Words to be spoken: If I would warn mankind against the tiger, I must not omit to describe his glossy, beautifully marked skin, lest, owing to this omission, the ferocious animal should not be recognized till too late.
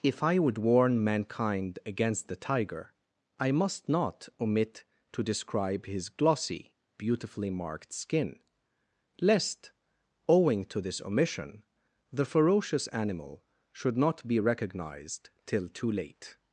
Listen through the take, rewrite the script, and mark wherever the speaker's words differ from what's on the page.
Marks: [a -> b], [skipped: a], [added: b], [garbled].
If I would warn mankind against the tiger, I must not omit to describe his glossy, beautifully marked skin, lest, owing to this omission, the ferocious animal should not be recognized till too late.